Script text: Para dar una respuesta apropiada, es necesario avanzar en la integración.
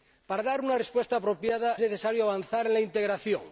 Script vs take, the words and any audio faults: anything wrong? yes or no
yes